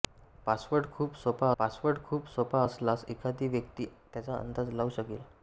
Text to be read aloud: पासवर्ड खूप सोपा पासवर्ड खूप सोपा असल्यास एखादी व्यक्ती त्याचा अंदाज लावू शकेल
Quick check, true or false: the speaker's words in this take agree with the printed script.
true